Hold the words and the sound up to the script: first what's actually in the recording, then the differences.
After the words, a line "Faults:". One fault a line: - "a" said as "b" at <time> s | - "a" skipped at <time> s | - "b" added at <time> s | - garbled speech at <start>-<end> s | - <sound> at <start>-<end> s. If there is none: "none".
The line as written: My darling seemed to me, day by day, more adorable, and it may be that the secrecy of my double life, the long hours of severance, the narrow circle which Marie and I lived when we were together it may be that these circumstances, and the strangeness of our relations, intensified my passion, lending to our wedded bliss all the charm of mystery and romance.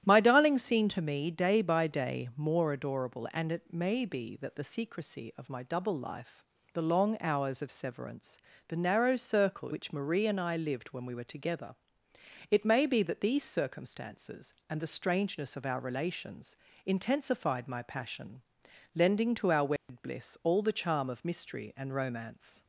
My darling seemed to me, day by day, more adorable, and it may be that the secrecy of my double life, the long hours of severance, the narrow circle which Marie and I lived when we were together it may be that these circumstances, and the strangeness of our relations, intensified my passion, lending to our wedded bliss all the charm of mystery and romance.
Faults:
- dropout at 19.8-19.9 s